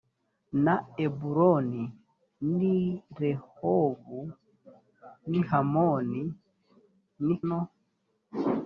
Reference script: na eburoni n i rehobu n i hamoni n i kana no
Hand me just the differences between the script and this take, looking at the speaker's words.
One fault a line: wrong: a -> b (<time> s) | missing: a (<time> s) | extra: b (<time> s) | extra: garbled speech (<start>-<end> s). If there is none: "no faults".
missing: kana (7.4 s)